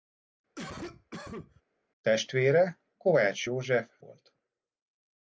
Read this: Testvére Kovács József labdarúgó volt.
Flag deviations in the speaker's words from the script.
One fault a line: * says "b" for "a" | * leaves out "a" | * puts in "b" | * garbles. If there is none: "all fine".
* leaves out "labdarúgó"